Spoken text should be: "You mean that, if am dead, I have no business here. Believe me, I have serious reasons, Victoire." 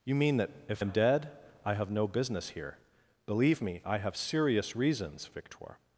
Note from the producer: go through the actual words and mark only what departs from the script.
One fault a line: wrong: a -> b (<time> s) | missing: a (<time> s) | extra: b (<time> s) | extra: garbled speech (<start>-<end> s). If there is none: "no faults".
no faults